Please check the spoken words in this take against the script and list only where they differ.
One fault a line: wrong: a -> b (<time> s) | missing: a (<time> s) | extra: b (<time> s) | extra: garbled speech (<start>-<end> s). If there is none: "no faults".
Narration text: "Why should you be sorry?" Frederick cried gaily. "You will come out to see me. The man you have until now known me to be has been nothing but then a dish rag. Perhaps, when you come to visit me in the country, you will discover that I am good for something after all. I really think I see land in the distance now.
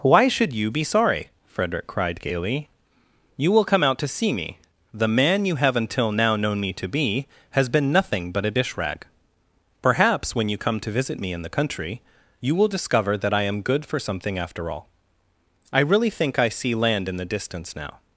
missing: then (8.4 s)